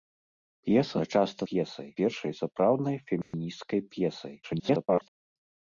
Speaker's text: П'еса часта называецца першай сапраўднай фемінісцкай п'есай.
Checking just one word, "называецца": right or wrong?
wrong